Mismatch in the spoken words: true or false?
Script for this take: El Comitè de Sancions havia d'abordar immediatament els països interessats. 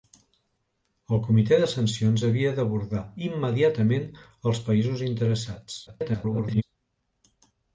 true